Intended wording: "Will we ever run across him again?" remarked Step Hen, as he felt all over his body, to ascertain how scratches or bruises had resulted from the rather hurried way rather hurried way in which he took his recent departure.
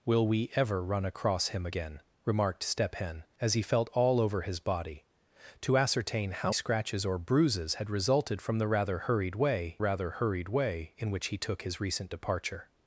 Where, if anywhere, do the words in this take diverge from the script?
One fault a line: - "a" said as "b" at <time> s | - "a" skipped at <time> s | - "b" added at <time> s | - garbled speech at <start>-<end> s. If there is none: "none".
none